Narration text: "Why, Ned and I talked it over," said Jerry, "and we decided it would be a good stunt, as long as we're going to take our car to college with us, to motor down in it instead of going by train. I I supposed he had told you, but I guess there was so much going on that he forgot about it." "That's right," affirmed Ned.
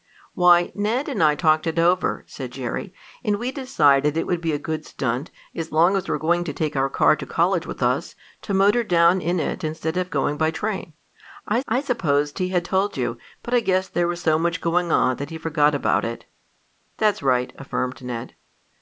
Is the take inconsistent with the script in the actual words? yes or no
no